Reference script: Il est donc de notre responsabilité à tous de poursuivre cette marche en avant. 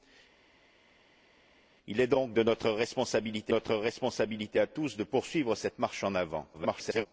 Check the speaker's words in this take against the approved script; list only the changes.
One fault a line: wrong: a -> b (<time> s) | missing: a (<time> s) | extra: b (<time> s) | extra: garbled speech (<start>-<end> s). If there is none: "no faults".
extra: notre responsabilité (3.5 s)
extra: garbled speech (6.5-7.1 s)